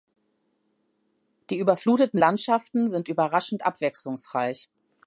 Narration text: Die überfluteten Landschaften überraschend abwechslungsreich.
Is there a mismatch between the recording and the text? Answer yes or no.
yes